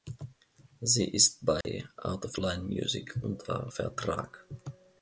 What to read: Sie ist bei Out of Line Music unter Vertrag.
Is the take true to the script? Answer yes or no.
yes